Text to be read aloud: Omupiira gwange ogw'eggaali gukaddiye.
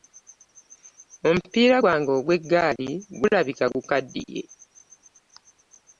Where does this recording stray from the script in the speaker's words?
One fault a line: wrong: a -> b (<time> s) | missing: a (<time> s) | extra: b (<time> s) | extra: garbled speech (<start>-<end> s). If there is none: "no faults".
extra: gulabika (3.2 s)